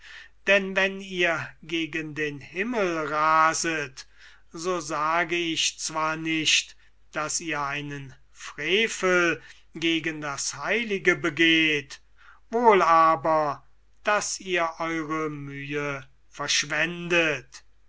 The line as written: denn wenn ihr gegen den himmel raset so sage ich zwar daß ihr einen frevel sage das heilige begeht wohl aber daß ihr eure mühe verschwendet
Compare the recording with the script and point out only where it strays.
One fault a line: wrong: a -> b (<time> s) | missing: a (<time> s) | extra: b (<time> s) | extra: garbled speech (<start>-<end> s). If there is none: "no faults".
extra: nicht (6.2 s)
wrong: sage -> gegen (9.8 s)